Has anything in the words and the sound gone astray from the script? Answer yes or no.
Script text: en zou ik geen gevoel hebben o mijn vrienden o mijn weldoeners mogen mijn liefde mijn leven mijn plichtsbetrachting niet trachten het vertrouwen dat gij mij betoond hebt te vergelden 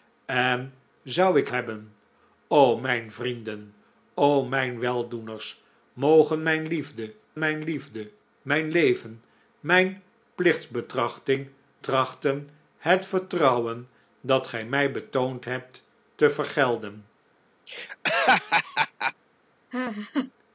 yes